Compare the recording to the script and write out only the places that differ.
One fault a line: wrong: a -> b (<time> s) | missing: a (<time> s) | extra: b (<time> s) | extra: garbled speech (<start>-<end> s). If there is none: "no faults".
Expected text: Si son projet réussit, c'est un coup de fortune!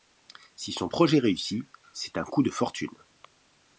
no faults